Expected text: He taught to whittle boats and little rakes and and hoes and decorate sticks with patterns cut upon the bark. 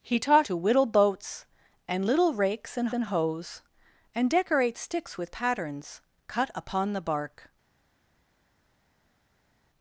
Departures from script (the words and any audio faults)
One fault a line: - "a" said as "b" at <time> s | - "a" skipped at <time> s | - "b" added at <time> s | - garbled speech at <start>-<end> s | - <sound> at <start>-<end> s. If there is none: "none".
none